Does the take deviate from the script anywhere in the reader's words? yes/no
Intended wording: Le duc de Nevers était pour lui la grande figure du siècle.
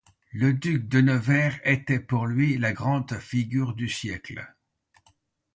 no